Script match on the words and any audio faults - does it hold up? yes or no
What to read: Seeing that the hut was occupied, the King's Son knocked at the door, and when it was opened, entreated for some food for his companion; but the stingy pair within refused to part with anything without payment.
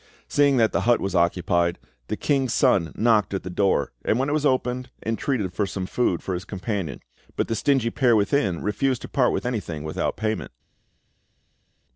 yes